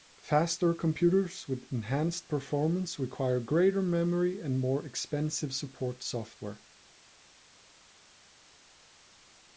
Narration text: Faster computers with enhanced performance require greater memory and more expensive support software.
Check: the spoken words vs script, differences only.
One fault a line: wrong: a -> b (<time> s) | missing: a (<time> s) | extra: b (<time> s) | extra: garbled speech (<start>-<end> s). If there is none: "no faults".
no faults